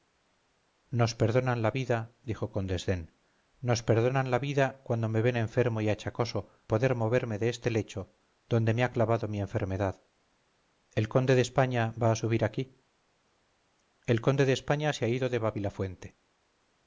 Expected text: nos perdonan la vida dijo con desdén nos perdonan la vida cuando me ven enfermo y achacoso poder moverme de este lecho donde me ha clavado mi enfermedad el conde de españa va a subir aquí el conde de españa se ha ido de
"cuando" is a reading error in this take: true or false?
false